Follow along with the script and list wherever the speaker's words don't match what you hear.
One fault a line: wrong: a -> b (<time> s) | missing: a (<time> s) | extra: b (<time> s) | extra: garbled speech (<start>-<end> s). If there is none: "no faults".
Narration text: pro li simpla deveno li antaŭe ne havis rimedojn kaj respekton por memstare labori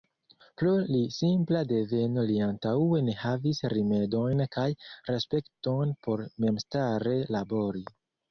no faults